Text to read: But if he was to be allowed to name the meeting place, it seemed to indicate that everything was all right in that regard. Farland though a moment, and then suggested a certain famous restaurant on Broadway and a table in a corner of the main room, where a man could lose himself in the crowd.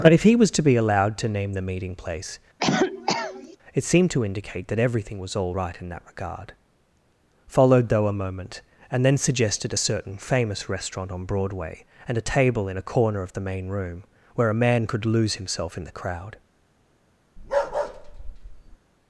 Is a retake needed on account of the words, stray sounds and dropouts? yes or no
yes